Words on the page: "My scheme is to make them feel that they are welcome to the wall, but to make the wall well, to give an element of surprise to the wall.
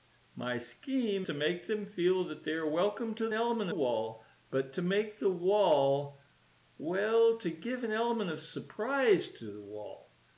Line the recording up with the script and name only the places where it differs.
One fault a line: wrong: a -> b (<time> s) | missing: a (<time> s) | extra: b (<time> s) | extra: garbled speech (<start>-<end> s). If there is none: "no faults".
missing: is (1.3 s)
wrong: the -> element (3.3 s)